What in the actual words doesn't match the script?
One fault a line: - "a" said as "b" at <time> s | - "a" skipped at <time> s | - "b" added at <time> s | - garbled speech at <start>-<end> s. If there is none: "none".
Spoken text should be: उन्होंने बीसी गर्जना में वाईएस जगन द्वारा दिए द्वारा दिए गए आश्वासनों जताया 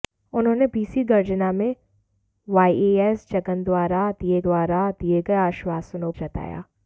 none